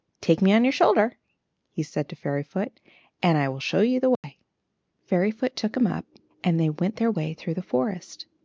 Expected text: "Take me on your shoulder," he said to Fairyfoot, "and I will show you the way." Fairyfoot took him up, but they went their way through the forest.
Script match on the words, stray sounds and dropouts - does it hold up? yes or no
no